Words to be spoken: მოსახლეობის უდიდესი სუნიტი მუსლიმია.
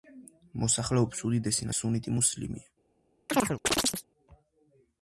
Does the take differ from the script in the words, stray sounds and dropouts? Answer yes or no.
yes